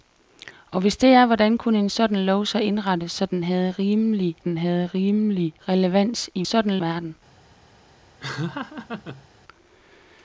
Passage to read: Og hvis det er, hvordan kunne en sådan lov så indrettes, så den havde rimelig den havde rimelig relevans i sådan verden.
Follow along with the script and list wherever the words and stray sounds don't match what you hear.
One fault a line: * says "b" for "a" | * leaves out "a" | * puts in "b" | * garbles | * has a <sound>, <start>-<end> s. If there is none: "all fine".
* has a laugh, 8.2-9.3 s